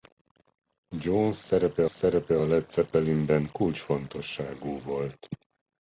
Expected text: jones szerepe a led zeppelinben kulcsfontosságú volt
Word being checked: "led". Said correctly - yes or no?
yes